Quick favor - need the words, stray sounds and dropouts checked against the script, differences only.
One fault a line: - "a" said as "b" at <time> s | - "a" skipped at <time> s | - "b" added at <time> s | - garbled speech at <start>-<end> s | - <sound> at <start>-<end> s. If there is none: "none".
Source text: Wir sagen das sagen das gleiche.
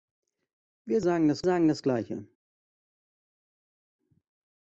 none